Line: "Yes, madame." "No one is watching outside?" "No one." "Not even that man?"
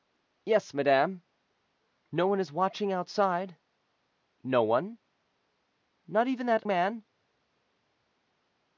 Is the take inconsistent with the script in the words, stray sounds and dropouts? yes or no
no